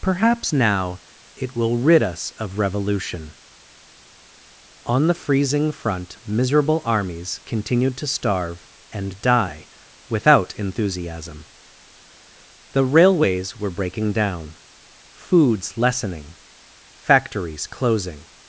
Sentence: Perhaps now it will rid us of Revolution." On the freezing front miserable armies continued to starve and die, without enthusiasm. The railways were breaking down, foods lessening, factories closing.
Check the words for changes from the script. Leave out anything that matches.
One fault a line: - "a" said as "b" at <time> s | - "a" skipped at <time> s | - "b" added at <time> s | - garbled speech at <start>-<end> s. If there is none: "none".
none